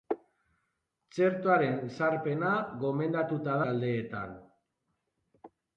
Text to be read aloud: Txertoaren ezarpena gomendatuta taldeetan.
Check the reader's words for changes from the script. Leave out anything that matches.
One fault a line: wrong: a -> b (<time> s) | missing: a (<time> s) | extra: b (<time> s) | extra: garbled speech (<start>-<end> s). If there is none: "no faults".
no faults